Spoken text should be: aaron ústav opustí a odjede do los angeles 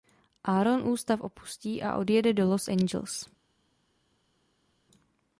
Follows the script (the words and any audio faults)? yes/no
yes